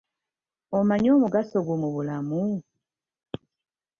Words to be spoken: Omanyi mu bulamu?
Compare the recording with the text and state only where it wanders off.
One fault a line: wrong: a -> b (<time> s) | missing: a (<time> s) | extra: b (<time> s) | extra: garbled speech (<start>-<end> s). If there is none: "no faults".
extra: omugaso gwo (1.1 s)